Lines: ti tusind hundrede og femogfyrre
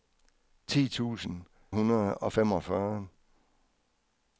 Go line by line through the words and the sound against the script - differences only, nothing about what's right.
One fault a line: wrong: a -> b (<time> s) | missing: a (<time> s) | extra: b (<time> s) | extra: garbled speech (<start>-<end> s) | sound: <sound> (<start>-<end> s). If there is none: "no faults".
no faults